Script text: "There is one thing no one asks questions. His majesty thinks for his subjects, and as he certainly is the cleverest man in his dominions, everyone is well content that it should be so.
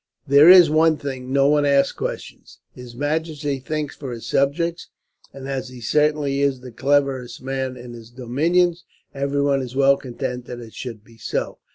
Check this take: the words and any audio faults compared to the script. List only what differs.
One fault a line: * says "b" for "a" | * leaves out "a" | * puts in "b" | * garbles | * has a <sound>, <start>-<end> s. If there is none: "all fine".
all fine